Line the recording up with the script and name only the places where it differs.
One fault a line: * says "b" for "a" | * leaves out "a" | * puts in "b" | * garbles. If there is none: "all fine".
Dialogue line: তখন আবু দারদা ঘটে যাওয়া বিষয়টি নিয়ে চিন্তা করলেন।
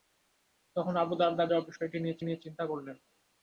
* leaves out "ঘটে"
* puts in "নিয়ে"